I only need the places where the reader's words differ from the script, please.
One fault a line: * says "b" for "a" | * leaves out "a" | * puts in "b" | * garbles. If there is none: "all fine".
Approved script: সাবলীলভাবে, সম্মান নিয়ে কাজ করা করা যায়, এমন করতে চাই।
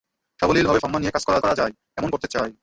all fine